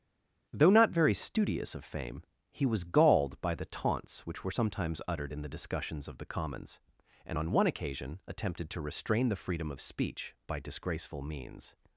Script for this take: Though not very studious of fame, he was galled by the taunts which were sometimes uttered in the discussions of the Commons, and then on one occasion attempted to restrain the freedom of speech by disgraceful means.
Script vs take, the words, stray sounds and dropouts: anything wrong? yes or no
yes